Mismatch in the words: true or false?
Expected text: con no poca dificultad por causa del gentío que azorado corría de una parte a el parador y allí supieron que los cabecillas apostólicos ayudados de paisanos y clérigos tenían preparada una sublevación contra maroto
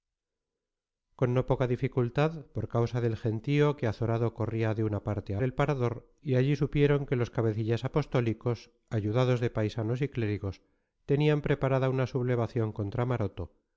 false